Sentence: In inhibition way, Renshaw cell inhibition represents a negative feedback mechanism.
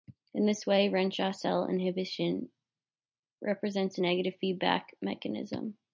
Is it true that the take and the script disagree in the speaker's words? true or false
true